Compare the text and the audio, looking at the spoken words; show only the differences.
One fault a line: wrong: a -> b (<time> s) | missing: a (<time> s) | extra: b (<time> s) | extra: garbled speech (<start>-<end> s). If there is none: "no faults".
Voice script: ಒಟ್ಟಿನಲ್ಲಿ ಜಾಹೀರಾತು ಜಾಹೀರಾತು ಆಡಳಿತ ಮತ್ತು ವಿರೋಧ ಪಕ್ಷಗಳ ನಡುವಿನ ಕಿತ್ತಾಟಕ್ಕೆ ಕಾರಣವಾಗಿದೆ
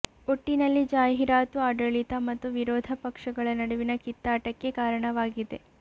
missing: ಜಾಹೀರಾತು (1.6 s)